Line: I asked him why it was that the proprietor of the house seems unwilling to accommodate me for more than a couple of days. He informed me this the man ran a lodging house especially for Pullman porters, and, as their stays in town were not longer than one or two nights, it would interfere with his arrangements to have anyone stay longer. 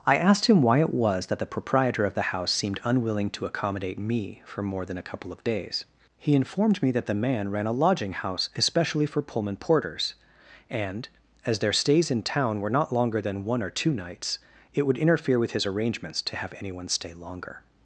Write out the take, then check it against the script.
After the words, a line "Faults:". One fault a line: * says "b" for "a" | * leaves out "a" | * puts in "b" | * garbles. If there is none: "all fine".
I asked him why it was that the proprietor of the house seemed unwilling to accommodate me for more than a couple of days. He informed me that the man ran a lodging house especially for Pullman porters, and, as their stays in town were not longer than one or two nights, it would interfere with his arrangements to have anyone stay longer.
Faults:
* says "seemed" for "seems"
* says "that" for "this"